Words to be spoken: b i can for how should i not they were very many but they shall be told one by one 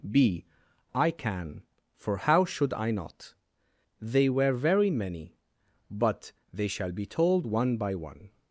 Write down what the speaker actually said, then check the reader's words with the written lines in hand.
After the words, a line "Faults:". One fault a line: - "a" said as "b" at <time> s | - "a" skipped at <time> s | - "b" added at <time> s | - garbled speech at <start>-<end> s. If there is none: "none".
b i can for how should i not they were very many but they shall be told one by one
Faults:
none